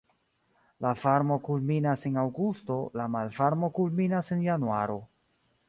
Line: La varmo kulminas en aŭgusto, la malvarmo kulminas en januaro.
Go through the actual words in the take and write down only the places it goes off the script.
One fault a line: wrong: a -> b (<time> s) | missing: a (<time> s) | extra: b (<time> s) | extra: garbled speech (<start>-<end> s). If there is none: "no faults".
no faults